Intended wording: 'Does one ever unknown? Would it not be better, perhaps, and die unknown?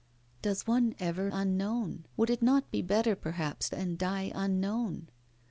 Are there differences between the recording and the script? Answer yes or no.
no